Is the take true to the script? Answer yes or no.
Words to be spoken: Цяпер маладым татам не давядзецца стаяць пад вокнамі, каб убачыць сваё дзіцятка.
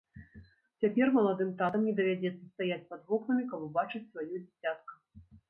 yes